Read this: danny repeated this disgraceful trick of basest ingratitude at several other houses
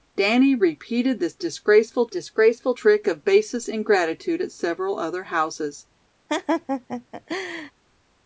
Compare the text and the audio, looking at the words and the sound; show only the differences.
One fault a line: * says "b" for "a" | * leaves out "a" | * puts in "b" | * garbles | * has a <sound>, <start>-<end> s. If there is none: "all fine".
* puts in "disgraceful"
* has a laugh, 6.3-7.7 s